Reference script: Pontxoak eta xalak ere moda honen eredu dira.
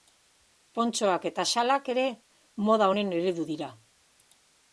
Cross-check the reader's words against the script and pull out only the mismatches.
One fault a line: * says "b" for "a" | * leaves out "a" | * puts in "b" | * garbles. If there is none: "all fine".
all fine